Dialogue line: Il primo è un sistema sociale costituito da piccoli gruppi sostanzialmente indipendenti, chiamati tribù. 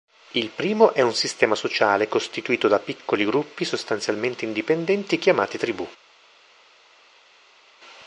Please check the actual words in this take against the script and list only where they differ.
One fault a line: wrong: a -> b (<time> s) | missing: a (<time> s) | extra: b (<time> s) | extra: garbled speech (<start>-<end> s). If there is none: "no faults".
no faults